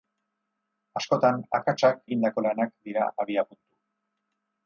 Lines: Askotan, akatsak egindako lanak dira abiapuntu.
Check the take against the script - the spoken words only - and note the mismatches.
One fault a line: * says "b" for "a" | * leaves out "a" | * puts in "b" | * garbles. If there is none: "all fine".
all fine